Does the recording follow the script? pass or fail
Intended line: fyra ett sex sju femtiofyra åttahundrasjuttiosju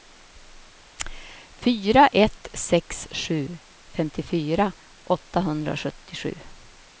pass